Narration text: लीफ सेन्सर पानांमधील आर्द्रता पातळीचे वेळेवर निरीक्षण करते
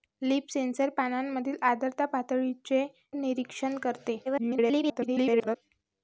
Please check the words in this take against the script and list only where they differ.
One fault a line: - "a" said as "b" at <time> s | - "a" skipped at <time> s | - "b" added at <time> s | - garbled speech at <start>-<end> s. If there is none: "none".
- "वेळेवर" skipped at 2.9 s
- garbled speech at 4.2-5.6 s